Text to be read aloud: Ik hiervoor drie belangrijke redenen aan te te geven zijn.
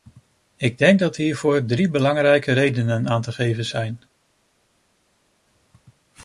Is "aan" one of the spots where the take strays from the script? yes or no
no